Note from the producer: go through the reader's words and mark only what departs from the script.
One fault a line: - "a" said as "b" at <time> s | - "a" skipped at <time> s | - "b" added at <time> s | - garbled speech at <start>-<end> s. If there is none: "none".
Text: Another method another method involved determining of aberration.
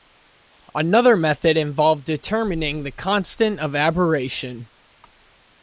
- "another method involved determining" said as "involved determining the constant" at 1.6 s